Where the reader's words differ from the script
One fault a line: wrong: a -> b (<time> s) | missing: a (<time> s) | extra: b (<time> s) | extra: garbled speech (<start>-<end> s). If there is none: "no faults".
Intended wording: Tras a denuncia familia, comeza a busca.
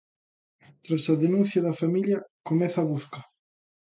extra: da (1.6 s)